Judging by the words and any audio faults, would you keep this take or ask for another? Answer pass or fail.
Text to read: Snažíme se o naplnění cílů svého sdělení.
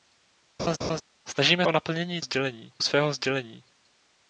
fail